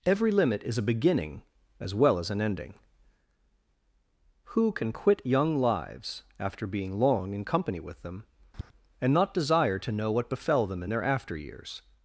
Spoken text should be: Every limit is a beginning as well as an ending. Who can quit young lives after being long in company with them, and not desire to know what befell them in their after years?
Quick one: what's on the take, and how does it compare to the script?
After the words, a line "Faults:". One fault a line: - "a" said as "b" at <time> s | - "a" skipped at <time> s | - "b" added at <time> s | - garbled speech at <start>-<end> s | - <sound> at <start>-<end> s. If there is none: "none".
Every limit is a beginning as well as an ending. Who can quit young lives after being long in company with them, and not desire to know what befell them in their after years?
Faults:
- tap at 8.5-8.7 s